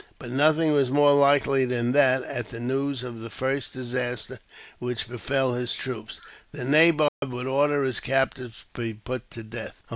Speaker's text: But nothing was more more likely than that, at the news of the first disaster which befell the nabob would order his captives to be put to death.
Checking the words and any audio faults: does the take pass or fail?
fail